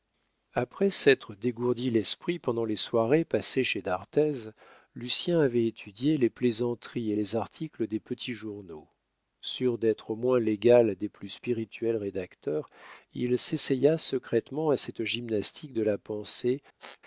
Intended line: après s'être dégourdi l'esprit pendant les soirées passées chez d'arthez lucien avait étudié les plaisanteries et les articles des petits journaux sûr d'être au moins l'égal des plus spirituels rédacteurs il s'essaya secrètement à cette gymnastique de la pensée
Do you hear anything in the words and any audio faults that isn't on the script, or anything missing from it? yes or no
yes